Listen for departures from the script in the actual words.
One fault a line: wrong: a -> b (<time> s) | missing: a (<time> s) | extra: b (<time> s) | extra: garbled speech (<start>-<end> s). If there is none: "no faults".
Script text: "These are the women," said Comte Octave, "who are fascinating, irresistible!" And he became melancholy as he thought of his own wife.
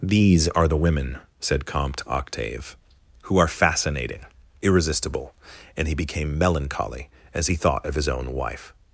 no faults